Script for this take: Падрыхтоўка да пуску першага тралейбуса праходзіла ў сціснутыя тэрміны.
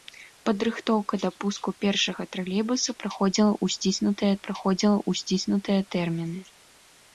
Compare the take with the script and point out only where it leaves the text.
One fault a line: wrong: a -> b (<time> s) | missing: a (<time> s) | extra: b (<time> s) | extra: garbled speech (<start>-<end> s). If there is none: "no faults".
extra: праходзіла ў сціснутыя (4.5 s)